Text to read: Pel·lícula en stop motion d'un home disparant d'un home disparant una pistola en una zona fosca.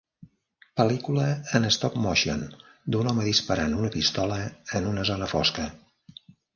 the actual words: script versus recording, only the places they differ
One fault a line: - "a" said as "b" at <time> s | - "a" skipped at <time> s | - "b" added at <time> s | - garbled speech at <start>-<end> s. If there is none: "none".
- "d'un home disparant" skipped at 3.8 s